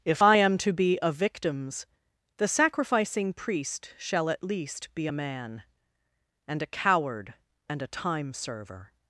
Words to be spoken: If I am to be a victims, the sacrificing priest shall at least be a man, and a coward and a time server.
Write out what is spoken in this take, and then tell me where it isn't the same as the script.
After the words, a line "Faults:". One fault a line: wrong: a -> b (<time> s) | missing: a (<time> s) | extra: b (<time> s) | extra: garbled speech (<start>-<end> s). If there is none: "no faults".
If I am to be a victims, the sacrificing priest shall at least be a man, and a coward and a time server.
Faults:
no faults